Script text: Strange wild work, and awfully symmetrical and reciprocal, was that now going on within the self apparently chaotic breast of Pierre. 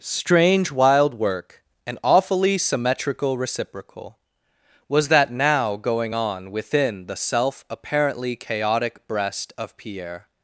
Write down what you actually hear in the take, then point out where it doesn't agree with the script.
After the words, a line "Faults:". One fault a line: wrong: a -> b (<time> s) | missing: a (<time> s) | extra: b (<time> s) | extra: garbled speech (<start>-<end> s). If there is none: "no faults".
Strange wild work, and awfully symmetrical reciprocal, was that now going on within the self apparently chaotic breast of Pierre.
Faults:
missing: and (3.4 s)